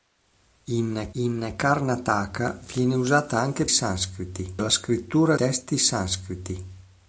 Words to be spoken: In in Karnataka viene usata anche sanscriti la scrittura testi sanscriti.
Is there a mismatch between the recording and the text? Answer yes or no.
no